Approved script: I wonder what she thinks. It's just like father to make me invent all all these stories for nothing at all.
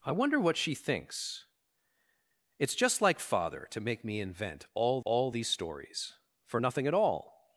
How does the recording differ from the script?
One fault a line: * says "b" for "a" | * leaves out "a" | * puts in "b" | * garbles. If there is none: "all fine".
all fine